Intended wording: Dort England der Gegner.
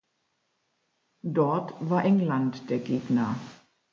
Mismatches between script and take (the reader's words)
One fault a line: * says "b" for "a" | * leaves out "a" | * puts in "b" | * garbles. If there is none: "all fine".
* puts in "war"